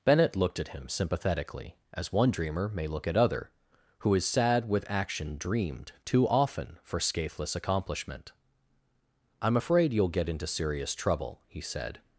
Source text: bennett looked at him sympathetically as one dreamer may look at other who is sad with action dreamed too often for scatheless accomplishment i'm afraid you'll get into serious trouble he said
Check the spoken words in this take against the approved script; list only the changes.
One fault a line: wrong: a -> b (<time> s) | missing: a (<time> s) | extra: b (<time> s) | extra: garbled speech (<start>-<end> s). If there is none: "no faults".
no faults